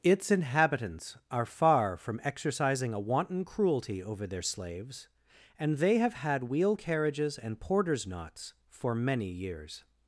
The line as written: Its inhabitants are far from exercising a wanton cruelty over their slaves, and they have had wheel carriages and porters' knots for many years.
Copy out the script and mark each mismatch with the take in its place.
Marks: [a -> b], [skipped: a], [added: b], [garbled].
Its inhabitants are far from exercising a wanton cruelty over their slaves, and they have had wheel carriages and porters' knots for many years.